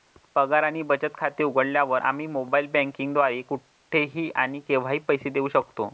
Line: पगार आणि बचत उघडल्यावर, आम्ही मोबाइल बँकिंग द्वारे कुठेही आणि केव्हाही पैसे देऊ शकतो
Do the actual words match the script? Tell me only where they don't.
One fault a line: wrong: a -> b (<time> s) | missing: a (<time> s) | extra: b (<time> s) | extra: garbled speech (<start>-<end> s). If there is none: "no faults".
extra: खाते (1.1 s)